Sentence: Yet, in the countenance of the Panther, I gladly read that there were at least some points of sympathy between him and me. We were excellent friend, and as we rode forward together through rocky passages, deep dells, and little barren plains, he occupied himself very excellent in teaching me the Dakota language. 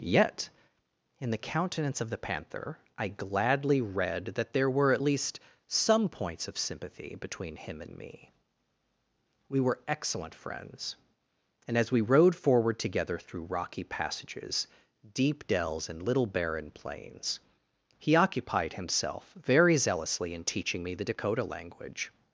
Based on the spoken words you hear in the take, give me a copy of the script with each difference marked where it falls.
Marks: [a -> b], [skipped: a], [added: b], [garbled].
Yet, in the countenance of the Panther, I gladly read that there were at least some points of sympathy between him and me. We were excellent [friend, -> friends] and as we rode forward together through rocky passages, deep dells, and little barren plains, he occupied himself very [excellent -> zealously] in teaching me the Dakota language.